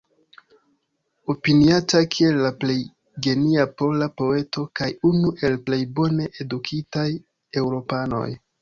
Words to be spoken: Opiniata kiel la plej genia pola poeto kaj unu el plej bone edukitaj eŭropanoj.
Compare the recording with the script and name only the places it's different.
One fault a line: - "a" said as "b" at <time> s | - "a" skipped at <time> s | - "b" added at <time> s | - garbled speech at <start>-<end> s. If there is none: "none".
none